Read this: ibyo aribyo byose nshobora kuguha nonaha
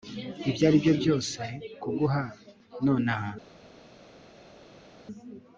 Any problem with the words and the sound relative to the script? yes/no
yes